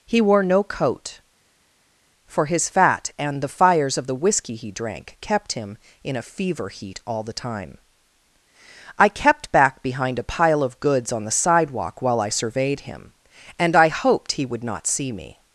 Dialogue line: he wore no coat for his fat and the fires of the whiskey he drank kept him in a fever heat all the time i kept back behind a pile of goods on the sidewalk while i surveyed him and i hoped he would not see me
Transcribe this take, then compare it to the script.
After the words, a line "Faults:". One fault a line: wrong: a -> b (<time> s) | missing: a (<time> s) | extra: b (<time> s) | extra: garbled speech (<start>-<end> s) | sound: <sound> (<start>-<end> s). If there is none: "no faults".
he wore no coat for his fat and the fires of the whiskey he drank kept him in a fever heat all the time i kept back behind a pile of goods on the sidewalk while i surveyed him and i hoped he would not see me
Faults:
no faults